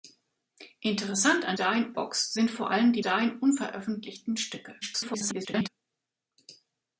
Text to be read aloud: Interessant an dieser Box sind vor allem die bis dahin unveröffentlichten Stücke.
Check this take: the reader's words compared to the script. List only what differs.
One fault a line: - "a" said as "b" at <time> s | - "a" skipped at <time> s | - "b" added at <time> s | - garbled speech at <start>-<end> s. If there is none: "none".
- "dieser" said as "dahin" at 1.6 s
- "bis" skipped at 3.0 s
- garbled speech at 4.8-5.7 s